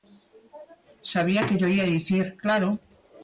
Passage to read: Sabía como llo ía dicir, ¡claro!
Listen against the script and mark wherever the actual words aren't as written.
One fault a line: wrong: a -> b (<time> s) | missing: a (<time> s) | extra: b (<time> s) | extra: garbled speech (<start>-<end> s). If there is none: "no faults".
wrong: como -> que (1.5 s)